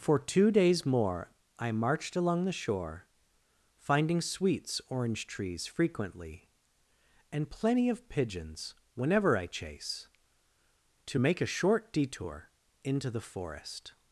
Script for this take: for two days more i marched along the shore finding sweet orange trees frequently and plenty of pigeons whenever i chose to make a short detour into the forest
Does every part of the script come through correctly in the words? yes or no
no